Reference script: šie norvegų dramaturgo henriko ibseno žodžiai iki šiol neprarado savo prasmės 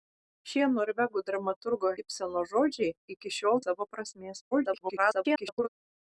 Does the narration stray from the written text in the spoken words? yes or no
yes